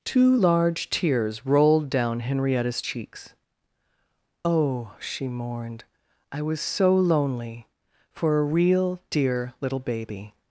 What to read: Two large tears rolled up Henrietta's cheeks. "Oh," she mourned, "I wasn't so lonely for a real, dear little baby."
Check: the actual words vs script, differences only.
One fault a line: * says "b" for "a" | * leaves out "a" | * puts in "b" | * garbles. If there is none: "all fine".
* says "down" for "up"
* says "was" for "wasn't"